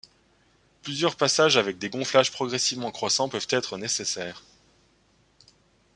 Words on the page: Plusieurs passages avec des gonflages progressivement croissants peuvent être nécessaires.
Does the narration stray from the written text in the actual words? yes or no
no